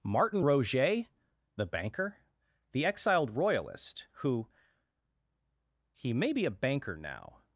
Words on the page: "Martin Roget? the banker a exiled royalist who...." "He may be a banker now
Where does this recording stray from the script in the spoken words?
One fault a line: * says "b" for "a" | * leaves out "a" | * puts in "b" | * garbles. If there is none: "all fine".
* says "the" for "a"